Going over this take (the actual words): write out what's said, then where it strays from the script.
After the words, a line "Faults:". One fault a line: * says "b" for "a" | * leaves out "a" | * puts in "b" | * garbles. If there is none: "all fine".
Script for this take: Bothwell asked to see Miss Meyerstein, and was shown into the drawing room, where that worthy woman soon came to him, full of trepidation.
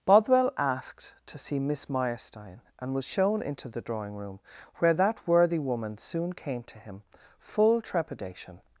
Bothwell asked to see Miss Meyerstein, and was shown into the drawing room, where that worthy woman soon came to him, full trepidation.
Faults:
* leaves out "of"